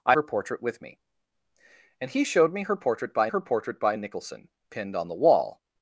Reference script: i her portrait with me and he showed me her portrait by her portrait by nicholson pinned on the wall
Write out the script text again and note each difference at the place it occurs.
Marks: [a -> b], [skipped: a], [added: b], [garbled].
i her portrait with me and he showed me her portrait by her portrait by nicholson pinned on the wall